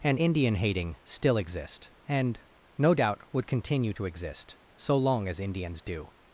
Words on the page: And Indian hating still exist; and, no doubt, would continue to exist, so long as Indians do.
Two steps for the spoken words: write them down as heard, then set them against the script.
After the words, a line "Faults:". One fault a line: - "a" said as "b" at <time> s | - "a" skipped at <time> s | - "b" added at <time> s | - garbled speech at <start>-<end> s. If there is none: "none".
And Indian hating still exist; and, no doubt, would continue to exist, so long as Indians do.
Faults:
none